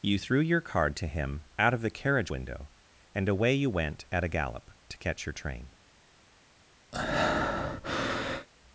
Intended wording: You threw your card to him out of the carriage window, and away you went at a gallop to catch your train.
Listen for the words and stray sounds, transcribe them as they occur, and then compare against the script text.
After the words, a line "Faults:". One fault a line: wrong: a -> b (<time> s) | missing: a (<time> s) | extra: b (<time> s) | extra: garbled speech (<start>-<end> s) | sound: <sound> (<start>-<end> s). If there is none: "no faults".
You threw your card to him out of the carriage window, and away you went at a gallop to catch your train.
Faults:
sound: breath (6.9-8.5 s)